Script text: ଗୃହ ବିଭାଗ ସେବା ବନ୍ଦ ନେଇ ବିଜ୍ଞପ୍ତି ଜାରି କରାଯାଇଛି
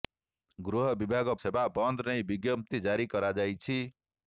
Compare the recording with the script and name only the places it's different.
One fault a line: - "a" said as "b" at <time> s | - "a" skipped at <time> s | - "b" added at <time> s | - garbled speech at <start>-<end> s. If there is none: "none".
none